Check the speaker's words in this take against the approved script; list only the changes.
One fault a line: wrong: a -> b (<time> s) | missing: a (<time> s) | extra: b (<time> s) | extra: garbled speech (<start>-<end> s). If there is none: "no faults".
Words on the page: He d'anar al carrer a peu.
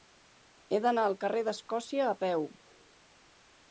extra: d'Escòcia (1.5 s)